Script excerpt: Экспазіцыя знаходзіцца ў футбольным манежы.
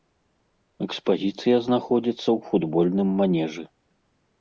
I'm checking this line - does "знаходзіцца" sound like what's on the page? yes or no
yes